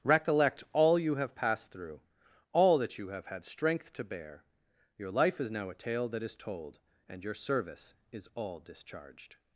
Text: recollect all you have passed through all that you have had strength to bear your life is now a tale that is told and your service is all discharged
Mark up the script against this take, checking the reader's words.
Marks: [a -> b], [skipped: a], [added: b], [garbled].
recollect all you have passed through all that you have had strength to bear your life is now a tale that is told and your service is all discharged